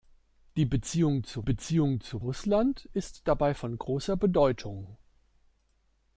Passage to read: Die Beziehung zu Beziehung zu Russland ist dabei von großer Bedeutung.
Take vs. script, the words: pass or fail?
pass